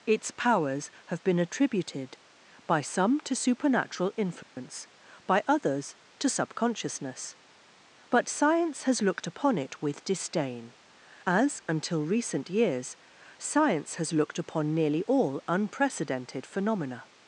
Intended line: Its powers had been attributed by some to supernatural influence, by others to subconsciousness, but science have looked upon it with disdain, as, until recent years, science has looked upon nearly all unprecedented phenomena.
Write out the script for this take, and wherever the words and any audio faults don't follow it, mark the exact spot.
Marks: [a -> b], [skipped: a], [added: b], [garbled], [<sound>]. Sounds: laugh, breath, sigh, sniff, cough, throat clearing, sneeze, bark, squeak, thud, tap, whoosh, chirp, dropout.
Its powers [had -> have] been attributed by some to supernatural influence, [dropout] by others to subconsciousness, but science [have -> has] looked upon it with disdain, as, until recent years, science has looked upon nearly all unprecedented phenomena.